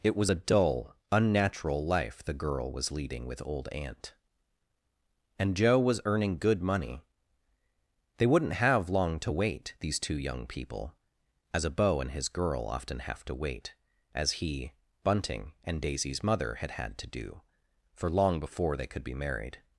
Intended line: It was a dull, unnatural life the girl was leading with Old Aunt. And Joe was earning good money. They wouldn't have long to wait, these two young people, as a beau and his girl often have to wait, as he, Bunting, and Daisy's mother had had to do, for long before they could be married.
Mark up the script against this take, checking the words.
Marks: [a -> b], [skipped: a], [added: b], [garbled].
It was a dull, unnatural life the girl was leading with Old Aunt. And Joe was earning good money. They wouldn't have long to wait, these two young people, as a beau and his girl often have to wait, as he, Bunting, and Daisy's mother had had to do, for long before they could be married.